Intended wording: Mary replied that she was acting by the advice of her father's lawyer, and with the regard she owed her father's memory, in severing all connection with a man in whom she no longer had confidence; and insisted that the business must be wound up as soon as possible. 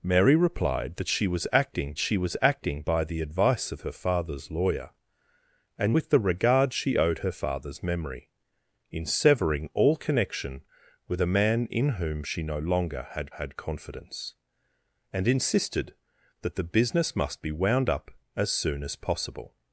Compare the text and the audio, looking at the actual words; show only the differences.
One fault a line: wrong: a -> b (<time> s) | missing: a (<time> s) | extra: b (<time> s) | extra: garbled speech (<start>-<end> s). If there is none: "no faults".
extra: she was acting (2.0 s)
extra: had (13.3 s)